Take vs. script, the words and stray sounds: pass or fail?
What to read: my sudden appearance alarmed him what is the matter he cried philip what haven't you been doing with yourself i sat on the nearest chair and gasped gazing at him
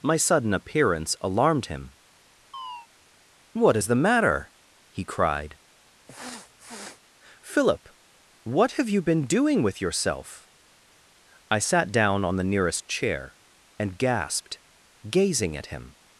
fail